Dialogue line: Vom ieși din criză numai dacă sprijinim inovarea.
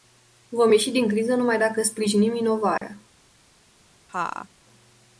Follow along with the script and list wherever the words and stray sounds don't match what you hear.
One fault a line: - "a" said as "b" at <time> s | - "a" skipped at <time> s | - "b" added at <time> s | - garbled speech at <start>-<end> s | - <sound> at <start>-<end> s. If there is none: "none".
- dropout at 2.8-2.8 s
- laugh at 4.1-4.5 s